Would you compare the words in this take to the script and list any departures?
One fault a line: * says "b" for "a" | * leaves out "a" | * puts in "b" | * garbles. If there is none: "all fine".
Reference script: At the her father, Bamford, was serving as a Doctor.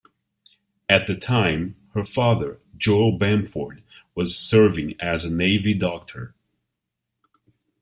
* puts in "time"
* puts in "Joel"
* puts in "Navy"